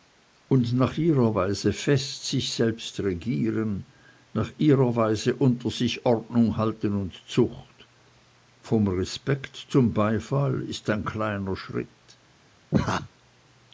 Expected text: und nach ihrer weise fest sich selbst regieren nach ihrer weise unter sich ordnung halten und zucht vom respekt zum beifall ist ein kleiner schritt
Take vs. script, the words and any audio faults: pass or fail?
fail